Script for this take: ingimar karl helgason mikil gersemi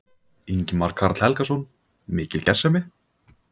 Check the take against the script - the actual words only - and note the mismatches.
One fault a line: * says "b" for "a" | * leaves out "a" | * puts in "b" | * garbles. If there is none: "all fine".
all fine